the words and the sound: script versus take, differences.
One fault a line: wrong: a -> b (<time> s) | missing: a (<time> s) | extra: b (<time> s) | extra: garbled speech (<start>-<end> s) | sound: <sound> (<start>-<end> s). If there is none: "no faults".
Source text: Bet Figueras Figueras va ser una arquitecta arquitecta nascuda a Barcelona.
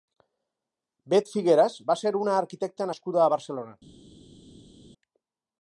missing: Figueras (1.8 s)
missing: arquitecta (2.9 s)